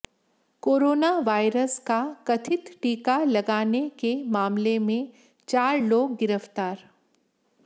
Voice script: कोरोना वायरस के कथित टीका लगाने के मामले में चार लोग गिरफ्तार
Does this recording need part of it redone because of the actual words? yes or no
yes